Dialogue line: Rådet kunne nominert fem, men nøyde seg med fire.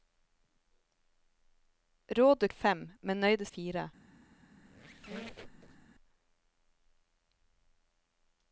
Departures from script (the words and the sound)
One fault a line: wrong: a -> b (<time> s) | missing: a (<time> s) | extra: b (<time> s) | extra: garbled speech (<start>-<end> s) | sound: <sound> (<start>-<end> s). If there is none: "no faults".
missing: kunne nominert (2.5 s)
missing: seg med (3.5 s)
sound: squeak (4.6-5.9 s)